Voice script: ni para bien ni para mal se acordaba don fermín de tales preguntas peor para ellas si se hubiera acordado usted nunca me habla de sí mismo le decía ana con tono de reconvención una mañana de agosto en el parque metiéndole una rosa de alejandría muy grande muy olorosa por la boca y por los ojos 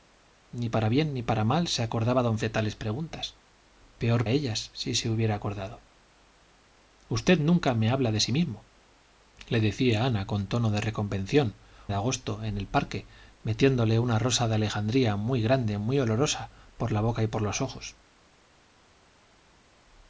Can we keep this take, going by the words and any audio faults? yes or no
no